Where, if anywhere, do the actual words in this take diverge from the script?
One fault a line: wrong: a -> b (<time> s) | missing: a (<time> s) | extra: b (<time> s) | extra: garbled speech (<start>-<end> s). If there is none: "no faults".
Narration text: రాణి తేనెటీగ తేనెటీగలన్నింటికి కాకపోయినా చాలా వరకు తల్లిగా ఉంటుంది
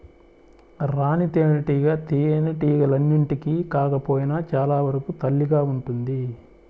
no faults